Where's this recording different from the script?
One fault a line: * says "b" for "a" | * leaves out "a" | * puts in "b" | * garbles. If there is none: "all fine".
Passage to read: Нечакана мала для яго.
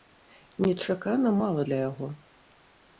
all fine